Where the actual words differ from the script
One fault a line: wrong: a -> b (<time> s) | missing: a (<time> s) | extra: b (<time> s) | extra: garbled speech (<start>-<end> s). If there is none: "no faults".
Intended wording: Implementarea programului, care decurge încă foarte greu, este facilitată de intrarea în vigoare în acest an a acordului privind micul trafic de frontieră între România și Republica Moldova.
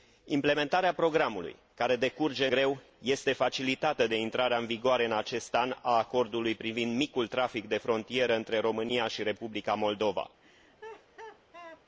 missing: încă foarte (2.5 s)